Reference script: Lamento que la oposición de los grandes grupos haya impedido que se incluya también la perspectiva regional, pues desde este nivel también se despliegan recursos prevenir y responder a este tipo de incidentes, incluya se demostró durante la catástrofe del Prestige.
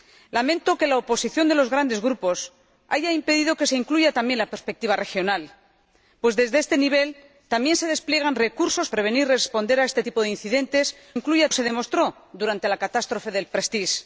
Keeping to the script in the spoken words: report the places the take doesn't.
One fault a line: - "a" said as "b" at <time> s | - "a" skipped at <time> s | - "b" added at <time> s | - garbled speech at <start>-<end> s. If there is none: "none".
none